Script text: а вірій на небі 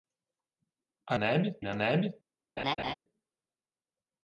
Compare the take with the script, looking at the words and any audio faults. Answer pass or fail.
fail